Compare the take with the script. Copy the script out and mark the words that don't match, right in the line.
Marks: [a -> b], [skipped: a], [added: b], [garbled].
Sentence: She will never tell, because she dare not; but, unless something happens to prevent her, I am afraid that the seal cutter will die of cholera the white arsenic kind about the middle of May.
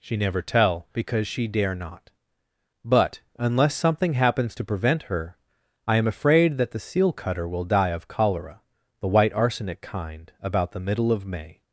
She [skipped: will] never tell, because she dare not; but, unless something happens to prevent her, I am afraid that the seal cutter will die of cholera the white arsenic kind about the middle of May.